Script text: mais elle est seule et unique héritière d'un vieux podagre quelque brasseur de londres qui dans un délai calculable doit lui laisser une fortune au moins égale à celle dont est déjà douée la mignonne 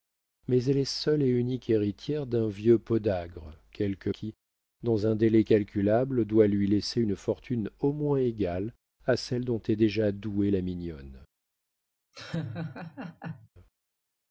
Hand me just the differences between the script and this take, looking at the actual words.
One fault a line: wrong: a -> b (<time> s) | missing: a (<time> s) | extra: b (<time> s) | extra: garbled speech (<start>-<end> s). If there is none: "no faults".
missing: brasseur de londres (4.1 s)